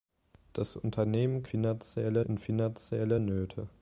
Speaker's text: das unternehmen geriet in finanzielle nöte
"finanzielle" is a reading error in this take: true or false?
false